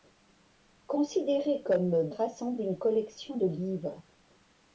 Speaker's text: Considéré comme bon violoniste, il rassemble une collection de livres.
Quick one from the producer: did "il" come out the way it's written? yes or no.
no